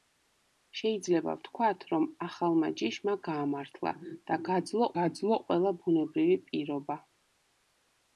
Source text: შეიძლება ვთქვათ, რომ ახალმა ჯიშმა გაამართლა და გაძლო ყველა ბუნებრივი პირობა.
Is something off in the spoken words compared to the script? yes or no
yes